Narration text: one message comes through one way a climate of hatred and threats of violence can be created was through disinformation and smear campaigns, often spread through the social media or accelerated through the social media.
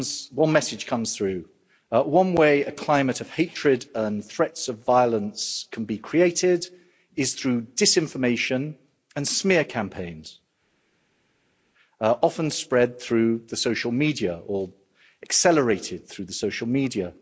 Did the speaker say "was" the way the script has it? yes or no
no